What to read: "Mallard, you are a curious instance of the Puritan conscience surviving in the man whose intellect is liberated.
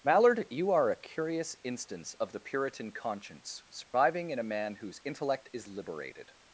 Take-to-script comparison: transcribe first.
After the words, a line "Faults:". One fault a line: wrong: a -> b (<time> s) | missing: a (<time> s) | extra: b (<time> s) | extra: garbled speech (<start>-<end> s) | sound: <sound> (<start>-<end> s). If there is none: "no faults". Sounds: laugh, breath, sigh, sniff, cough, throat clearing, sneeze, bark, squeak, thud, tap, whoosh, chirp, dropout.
"Mallard, you are a curious instance of the Puritan conscience surviving in a man whose intellect is liberated.
Faults:
sound: dropout (3.8-3.9 s)
wrong: the -> a (4.4 s)